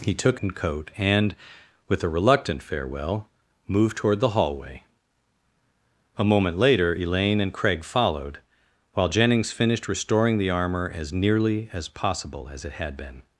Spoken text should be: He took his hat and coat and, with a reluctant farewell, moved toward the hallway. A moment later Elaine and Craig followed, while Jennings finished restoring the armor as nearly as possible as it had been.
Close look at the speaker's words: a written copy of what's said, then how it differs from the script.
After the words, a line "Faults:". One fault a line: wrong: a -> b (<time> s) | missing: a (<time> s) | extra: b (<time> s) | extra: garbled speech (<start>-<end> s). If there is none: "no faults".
He took and coat and, with a reluctant farewell, moved toward the hallway. A moment later Elaine and Craig followed, while Jennings finished restoring the armor as nearly as possible as it had been.
Faults:
missing: his hat (0.4 s)